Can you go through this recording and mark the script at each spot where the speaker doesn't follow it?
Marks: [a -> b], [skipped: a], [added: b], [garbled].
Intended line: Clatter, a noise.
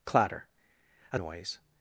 Clatter, a noise.